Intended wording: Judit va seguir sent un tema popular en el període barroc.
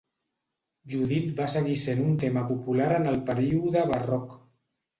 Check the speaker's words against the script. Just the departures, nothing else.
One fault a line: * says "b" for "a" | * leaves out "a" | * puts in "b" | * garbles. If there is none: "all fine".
all fine